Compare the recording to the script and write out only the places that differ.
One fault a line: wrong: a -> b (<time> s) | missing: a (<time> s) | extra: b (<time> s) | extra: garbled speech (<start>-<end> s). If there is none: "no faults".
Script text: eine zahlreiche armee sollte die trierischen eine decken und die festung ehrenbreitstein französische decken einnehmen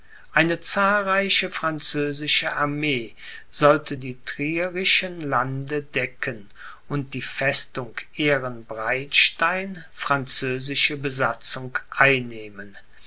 extra: französische (1.5 s)
wrong: eine -> lande (5.2 s)
wrong: decken -> besatzung (11.0 s)